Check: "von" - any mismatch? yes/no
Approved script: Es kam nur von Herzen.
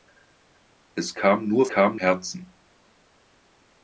yes